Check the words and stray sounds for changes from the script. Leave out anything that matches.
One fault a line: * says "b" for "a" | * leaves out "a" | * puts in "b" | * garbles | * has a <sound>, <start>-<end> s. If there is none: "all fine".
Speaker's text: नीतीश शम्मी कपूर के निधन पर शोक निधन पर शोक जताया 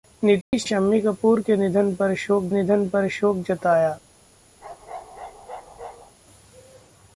* has a dropout, 0.4-0.5 s
* has a bark, 4.6-6.1 s